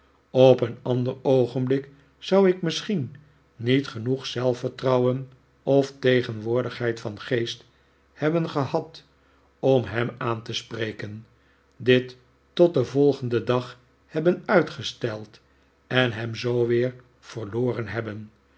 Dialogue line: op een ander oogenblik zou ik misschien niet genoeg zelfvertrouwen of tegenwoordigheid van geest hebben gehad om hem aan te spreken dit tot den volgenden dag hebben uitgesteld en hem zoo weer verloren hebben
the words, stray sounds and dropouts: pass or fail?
pass